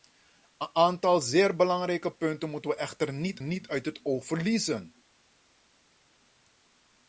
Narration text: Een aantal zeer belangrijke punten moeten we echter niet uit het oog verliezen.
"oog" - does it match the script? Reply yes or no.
yes